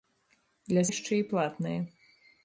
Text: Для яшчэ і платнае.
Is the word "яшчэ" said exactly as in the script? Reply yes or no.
yes